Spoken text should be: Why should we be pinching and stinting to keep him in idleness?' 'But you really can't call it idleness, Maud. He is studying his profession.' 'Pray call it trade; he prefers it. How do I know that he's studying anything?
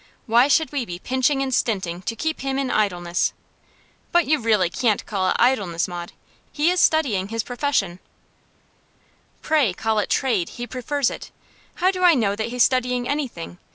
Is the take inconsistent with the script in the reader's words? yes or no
no